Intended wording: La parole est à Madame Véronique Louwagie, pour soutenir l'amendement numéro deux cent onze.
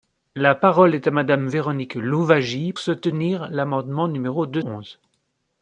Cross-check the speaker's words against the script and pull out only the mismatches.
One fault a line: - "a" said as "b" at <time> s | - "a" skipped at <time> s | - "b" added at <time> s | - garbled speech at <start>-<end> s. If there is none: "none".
- "pour" skipped at 2.7 s
- "cent" skipped at 4.6 s